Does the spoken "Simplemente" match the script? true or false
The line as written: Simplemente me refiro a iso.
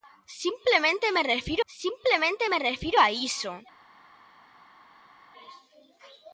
true